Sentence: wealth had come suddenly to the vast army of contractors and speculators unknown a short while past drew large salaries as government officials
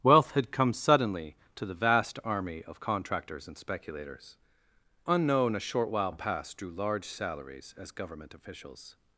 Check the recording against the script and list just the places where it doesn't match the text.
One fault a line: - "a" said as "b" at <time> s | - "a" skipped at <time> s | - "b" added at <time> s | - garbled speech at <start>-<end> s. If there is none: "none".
none